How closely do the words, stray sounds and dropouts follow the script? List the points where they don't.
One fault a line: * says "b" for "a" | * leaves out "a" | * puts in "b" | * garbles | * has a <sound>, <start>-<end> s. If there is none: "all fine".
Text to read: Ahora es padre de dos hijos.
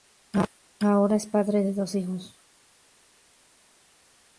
all fine